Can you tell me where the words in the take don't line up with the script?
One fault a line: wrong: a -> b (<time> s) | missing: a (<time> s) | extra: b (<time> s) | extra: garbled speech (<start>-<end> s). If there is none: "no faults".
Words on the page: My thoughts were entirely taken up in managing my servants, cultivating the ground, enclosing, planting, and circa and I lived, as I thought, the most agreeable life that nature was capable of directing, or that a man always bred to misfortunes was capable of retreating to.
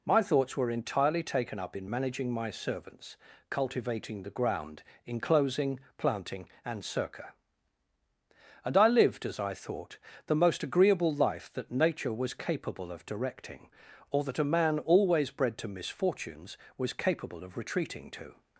no faults